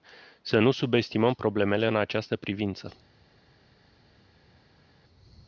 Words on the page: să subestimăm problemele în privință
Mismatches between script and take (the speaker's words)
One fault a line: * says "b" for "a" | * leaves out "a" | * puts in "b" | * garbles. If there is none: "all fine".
* puts in "nu"
* puts in "această"